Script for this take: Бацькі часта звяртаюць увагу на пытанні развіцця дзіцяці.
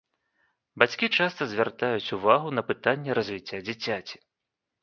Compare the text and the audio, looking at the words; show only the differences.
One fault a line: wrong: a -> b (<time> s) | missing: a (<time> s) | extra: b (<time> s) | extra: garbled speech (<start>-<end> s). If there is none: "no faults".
no faults